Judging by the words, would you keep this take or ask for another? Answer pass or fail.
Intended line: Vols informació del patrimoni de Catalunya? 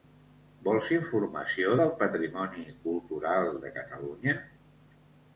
fail